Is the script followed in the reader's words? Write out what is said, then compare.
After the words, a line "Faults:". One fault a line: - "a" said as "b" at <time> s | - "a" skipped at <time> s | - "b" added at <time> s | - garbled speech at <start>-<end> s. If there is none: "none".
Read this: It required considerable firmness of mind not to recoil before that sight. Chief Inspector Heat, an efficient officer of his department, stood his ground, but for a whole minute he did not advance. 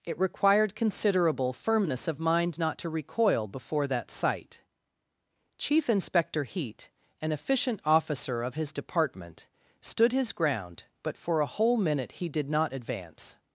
It required considerable firmness of mind not to recoil before that sight. Chief Inspector Heat, an efficient officer of his department, stood his ground, but for a whole minute he did not advance.
Faults:
none